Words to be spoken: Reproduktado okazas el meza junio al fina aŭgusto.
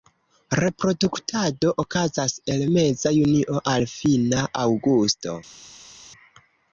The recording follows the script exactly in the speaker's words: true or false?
true